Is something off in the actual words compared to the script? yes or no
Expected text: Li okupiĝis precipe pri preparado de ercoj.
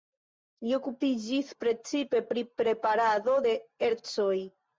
no